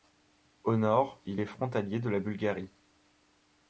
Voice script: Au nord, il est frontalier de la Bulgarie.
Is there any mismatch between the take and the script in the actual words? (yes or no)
no